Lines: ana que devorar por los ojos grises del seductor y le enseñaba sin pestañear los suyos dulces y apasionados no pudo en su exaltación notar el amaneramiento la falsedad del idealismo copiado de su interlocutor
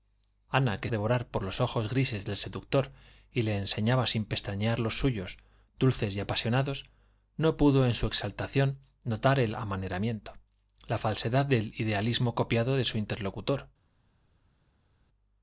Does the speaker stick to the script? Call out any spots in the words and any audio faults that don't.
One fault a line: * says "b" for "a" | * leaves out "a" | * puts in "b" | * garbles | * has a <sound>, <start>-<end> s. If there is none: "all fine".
all fine